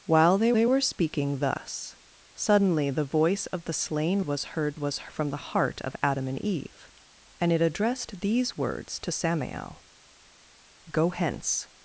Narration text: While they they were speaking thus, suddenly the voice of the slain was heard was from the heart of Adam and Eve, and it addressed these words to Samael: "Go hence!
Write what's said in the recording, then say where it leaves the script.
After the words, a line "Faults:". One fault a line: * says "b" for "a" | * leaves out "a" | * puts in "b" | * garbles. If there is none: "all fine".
While they they were speaking thus, suddenly the voice of the slain was heard was from the heart of Adam and Eve, and it addressed these words to Samael: "Go hence!
Faults:
all fine